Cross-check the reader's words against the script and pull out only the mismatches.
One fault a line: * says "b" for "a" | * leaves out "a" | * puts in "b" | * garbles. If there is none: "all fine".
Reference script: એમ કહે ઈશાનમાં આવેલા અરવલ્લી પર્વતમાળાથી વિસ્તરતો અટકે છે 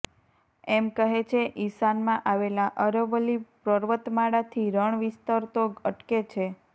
* puts in "છે"
* puts in "રણ"